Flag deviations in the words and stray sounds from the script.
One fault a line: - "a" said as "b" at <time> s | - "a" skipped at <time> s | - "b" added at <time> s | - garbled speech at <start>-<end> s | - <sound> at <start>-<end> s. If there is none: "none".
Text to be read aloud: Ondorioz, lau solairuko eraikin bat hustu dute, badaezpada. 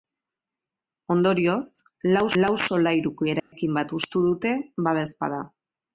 - "lau" added at 2.4 s
- dropout at 3.4-3.5 s